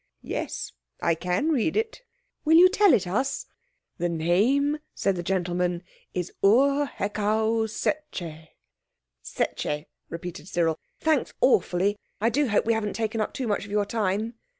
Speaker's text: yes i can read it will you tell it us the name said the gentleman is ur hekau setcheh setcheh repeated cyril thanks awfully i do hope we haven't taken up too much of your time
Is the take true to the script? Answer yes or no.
yes